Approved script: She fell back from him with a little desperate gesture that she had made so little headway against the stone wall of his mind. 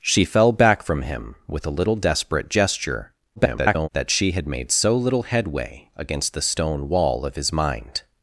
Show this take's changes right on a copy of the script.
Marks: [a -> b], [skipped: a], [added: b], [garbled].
She fell back from him with a little desperate gesture [garbled] that she had made so little headway against the stone wall of his mind.